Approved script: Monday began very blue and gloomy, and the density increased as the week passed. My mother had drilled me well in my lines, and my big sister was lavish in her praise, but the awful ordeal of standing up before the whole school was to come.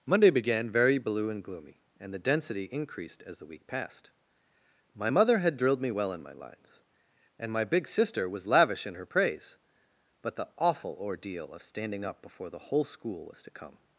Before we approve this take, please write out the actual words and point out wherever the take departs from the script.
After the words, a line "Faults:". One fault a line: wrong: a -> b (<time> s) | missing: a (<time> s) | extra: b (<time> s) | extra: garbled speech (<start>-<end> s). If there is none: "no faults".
Monday began very blue and gloomy, and the density increased as the week passed. My mother had drilled me well in my lines, and my big sister was lavish in her praise, but the awful ordeal of standing up before the whole school was to come.
Faults:
no faults